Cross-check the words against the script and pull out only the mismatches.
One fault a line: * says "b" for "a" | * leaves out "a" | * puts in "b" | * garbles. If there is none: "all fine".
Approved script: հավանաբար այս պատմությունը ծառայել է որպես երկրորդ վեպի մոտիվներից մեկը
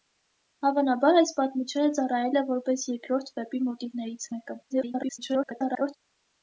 * garbles